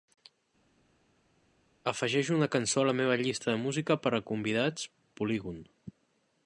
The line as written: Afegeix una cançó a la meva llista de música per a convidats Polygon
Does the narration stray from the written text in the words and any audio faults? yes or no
no